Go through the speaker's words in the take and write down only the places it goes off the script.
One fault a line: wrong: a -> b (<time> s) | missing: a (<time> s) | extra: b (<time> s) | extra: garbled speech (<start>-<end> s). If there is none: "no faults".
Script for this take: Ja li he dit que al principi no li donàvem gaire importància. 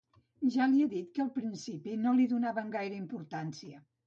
no faults